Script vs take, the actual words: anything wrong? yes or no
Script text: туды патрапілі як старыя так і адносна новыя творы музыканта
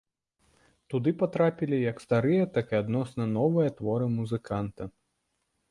no